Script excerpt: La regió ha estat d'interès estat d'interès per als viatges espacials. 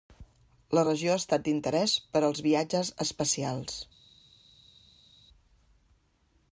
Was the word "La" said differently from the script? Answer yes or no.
no